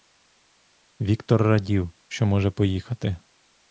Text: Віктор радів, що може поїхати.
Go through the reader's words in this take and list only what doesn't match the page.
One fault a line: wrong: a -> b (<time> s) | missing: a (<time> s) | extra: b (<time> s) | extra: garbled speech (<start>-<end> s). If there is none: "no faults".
no faults